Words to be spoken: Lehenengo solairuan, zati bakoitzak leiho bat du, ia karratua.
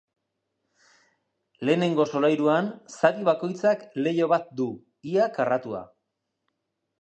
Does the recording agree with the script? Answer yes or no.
yes